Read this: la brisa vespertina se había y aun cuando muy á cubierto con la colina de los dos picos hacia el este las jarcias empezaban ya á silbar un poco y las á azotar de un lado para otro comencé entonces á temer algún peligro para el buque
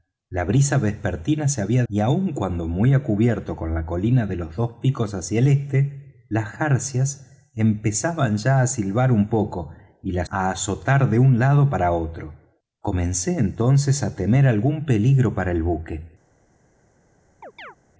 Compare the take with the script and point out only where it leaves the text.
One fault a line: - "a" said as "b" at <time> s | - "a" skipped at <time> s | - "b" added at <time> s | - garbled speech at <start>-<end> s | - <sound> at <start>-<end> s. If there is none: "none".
- chirp at 17.4-17.8 s